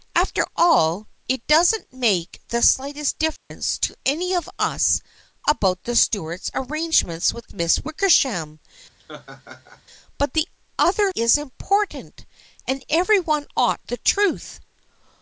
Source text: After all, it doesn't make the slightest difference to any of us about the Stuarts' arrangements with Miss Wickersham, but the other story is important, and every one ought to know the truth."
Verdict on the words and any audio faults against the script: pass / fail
fail